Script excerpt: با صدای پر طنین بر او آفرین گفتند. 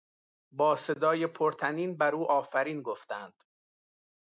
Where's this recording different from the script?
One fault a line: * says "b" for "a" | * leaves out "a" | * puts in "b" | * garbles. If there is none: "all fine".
all fine